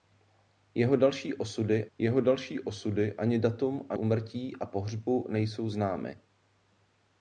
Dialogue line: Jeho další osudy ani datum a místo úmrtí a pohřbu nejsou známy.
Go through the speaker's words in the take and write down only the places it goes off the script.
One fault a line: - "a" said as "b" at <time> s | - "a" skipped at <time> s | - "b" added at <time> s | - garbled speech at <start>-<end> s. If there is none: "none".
- "jeho další osudy" added at 2.0 s
- "místo" skipped at 4.0 s